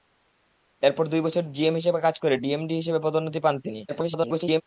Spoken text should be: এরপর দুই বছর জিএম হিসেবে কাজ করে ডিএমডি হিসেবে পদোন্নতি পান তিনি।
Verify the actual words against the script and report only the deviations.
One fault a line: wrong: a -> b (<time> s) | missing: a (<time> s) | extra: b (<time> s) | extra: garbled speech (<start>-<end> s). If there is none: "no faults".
extra: garbled speech (3.9-4.6 s)